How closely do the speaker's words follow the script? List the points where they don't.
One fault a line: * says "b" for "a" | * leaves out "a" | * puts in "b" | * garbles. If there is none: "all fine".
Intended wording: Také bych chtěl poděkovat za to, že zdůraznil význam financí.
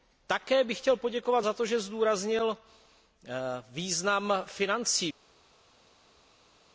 all fine